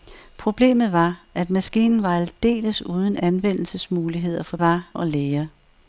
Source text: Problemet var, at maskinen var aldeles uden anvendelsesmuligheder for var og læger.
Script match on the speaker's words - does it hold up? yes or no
yes